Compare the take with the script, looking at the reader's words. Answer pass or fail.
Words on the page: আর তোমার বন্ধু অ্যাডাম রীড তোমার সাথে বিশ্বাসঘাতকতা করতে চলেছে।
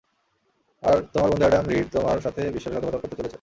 pass